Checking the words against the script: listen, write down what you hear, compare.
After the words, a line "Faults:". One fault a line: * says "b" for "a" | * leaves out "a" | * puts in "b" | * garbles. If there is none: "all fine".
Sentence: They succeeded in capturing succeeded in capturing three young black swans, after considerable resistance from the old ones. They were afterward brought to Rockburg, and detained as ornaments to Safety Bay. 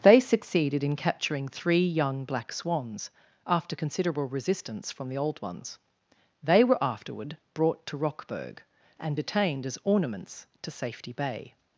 They succeeded in capturing three young black swans, after considerable resistance from the old ones. They were afterward brought to Rockburg, and detained as ornaments to Safety Bay.
Faults:
* leaves out "succeeded in capturing"